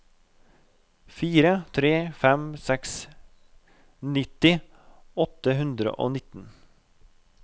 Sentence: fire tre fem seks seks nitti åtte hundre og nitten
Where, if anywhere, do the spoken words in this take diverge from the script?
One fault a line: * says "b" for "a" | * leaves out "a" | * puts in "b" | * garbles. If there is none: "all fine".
* leaves out "seks"